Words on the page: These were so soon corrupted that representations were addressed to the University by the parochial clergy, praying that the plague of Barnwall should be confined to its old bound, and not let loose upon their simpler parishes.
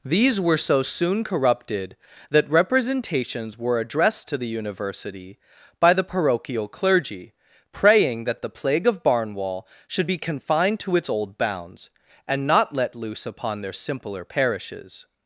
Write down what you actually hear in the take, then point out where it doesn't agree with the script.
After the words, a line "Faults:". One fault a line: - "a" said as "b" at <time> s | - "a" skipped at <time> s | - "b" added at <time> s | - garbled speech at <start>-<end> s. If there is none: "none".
These were so soon corrupted that representations were addressed to the University by the parochial clergy, praying that the plague of Barnwall should be confined to its old bounds, and not let loose upon their simpler parishes.
Faults:
- "bound" said as "bounds" at 11.4 s